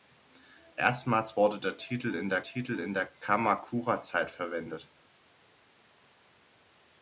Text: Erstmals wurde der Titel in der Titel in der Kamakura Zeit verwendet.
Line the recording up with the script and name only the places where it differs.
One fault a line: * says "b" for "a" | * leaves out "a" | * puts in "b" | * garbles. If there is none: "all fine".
all fine